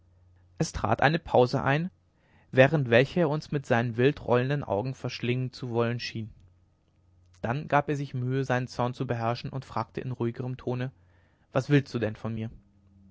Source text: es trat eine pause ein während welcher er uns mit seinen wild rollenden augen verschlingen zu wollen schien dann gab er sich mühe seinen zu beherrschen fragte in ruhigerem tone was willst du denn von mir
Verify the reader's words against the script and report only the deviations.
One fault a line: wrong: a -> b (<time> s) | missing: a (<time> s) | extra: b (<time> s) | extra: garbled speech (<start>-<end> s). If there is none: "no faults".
extra: zorn (8.7 s)
extra: und (9.5 s)